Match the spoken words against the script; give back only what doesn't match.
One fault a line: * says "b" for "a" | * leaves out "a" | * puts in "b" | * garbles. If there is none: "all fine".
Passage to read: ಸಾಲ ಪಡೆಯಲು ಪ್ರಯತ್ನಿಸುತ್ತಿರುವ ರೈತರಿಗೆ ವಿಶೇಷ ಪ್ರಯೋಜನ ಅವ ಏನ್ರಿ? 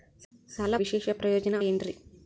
* leaves out "ಪಡೆಯಲು ಪ್ರಯತ್ನಿಸುತ್ತಿರುವ ರೈತರಿಗೆ"
* leaves out "ಅವ"